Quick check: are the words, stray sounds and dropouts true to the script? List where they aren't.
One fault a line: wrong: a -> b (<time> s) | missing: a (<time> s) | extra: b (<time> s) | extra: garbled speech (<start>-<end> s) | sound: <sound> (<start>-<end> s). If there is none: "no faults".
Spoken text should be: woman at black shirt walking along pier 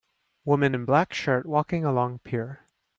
wrong: at -> in (0.7 s)